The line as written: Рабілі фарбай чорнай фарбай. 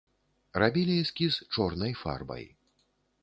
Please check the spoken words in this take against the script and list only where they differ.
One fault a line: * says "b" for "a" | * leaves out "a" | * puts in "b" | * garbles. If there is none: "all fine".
* says "эскіз" for "фарбай"